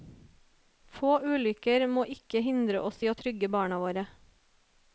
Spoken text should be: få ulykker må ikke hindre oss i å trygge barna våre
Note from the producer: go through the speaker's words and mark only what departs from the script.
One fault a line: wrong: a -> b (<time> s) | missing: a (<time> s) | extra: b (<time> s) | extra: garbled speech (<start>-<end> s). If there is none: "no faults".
no faults